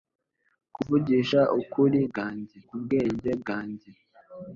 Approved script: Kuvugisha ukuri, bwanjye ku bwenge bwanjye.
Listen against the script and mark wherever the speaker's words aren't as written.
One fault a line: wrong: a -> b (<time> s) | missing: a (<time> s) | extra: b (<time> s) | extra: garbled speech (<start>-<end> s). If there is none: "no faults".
no faults